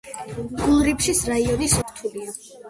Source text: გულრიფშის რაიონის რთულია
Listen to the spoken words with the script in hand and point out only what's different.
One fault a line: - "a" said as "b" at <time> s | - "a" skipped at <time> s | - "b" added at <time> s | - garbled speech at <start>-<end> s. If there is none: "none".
none